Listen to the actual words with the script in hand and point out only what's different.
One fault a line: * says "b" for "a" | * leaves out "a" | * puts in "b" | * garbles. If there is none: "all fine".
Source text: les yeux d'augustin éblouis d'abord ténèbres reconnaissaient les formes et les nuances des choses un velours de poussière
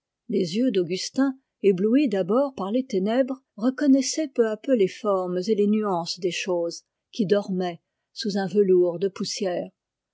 * puts in "par les"
* puts in "peu à peu"
* puts in "qui dormaient sous"